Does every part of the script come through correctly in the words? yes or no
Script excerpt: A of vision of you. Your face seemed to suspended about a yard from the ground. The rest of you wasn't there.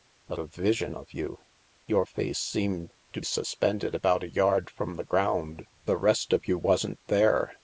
yes